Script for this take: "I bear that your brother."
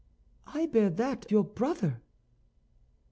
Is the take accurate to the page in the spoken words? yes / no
yes